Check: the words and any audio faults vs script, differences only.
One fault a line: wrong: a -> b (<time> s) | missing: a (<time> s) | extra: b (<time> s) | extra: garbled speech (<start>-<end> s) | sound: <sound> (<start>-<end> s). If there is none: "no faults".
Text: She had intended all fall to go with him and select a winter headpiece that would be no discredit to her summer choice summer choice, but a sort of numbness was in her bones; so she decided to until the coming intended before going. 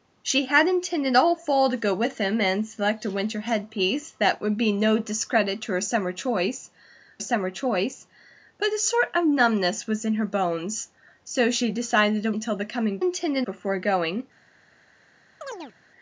sound: chirp (15.4-15.7 s)